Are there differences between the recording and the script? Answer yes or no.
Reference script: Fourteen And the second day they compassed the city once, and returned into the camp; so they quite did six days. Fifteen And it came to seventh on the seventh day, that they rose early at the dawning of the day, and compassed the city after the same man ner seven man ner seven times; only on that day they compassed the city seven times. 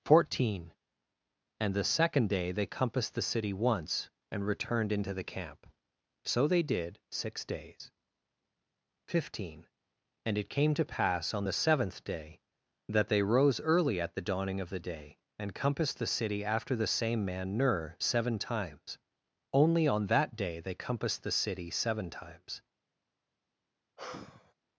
yes